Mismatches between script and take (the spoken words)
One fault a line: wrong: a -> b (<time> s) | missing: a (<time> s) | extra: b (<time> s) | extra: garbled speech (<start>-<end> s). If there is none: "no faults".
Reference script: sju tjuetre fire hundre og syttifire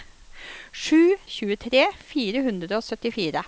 no faults